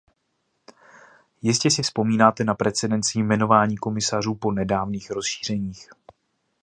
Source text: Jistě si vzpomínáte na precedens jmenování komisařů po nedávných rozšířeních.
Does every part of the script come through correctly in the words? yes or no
yes